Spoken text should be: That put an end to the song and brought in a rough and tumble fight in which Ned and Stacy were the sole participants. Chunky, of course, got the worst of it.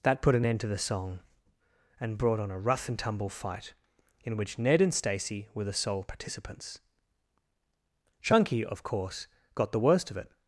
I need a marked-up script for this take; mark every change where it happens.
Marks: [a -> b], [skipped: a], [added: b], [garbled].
That put an end to the song and brought [in -> on] a rough and tumble fight in which Ned and Stacy were the sole participants. Chunky, of course, got the worst of it.